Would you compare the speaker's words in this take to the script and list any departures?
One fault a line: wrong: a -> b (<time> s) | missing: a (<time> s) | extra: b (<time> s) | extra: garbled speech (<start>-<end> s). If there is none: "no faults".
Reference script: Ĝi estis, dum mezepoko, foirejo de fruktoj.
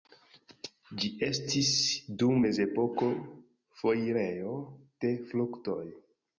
no faults